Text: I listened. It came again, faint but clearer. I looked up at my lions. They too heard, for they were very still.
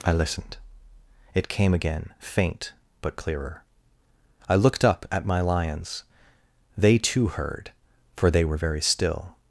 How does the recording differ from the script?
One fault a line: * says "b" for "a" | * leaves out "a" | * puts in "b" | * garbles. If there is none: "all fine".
all fine